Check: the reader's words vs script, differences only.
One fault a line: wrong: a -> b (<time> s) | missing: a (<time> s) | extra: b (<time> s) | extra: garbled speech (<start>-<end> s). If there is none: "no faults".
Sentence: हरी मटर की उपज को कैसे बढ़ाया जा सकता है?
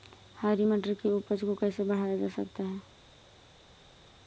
no faults